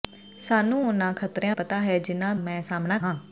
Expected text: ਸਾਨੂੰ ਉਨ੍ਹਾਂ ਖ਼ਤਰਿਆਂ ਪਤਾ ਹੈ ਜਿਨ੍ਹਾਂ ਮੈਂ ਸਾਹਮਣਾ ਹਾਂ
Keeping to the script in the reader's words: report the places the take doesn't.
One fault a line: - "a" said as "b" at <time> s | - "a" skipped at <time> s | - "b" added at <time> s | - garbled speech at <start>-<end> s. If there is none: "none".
none